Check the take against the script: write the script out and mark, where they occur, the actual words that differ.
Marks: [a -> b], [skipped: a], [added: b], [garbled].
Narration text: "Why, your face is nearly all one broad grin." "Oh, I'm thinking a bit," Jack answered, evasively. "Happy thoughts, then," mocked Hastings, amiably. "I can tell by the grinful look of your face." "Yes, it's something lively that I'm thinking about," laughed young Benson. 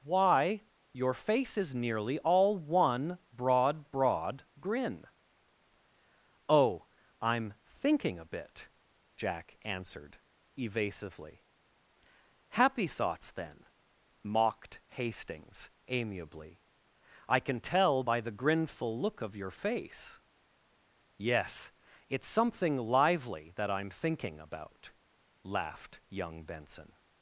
"Why, your face is nearly all one broad [added: broad] grin." "Oh, I'm thinking a bit," Jack answered, evasively. "Happy thoughts, then," mocked Hastings, amiably. "I can tell by the grinful look of your face." "Yes, it's something lively that I'm thinking about," laughed young Benson.